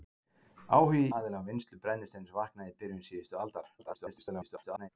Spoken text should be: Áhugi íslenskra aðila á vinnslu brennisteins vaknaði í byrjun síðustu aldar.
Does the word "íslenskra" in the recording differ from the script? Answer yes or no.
yes